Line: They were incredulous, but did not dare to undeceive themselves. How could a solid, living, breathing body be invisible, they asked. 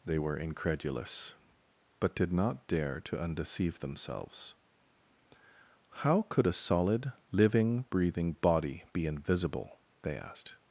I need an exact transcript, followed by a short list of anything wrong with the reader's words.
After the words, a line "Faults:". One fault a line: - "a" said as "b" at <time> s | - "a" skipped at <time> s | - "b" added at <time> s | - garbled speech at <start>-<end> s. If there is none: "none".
They were incredulous, but did not dare to undeceive themselves. How could a solid, living, breathing body be invisible, they asked.
Faults:
none